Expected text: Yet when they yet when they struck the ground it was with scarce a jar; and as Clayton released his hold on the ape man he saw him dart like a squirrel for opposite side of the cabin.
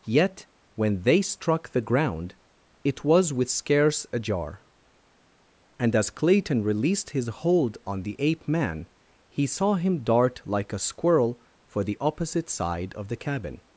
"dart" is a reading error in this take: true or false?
false